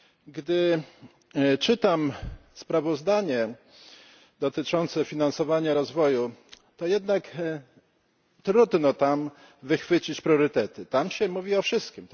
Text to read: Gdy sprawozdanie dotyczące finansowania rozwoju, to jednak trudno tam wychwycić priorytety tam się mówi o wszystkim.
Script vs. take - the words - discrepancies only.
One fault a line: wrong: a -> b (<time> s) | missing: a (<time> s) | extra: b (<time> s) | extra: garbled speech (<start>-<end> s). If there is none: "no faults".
extra: czytam (1.6 s)